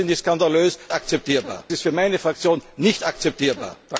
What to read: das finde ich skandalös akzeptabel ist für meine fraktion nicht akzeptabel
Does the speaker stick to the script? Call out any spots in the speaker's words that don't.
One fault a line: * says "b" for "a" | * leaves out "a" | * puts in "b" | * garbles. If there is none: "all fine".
all fine